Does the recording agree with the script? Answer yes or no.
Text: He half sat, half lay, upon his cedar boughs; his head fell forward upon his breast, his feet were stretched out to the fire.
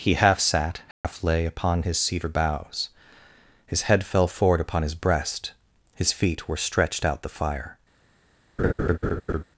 no